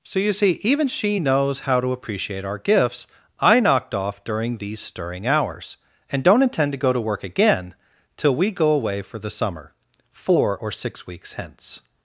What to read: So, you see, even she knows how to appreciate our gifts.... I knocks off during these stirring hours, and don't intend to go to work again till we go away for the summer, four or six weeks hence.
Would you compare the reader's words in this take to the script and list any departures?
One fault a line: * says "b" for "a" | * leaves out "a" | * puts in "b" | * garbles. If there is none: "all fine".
* says "knocked" for "knocks"